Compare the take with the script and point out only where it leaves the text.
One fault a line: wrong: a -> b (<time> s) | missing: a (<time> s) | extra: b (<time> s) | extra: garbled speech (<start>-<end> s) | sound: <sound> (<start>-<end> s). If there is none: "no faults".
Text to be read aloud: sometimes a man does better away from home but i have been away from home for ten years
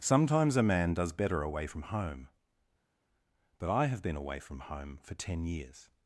no faults